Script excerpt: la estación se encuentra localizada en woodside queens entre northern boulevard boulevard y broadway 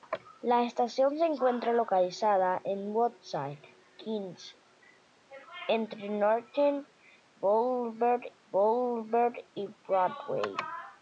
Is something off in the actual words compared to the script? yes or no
no